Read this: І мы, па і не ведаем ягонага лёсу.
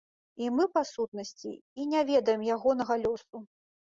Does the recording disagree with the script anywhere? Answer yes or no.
yes